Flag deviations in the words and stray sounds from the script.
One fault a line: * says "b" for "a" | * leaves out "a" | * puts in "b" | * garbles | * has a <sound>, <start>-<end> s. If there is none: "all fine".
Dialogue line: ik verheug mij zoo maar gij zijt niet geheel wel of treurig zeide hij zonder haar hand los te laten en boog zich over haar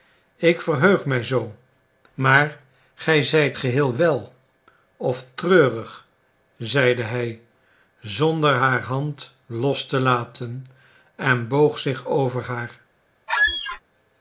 * leaves out "niet"
* has a squeak, 13.3-13.8 s